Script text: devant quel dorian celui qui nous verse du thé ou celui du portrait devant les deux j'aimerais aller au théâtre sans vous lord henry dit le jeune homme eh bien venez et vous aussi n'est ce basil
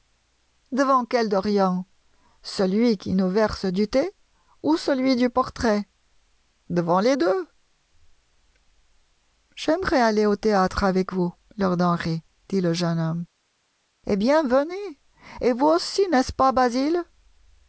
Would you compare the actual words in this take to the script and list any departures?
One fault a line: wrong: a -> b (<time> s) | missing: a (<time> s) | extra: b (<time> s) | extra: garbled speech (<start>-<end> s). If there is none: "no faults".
wrong: sans -> avec (10.8 s)
extra: pas (16.3 s)